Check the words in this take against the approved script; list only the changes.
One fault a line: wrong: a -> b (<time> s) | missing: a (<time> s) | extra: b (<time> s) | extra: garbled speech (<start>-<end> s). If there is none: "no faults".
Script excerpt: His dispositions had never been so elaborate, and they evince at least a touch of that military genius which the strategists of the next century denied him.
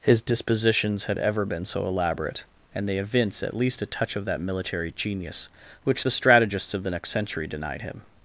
wrong: never -> ever (1.2 s)